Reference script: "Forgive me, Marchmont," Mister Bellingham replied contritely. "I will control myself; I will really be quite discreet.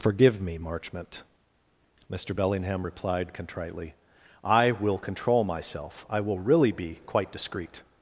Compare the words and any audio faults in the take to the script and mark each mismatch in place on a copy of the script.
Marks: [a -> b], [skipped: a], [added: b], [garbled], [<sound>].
"Forgive me, Marchmont," Mister Bellingham replied contritely. "I will control myself; I will really be quite discreet.